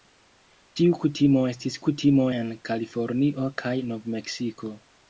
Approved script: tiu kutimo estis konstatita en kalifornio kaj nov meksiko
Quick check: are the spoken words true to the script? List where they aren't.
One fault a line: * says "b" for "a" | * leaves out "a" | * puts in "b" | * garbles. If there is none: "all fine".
* says "kutimo" for "konstatita"